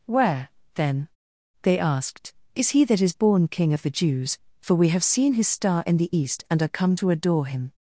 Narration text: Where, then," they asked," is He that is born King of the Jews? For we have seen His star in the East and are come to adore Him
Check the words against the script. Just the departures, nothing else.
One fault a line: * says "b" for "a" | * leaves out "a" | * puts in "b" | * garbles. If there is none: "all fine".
all fine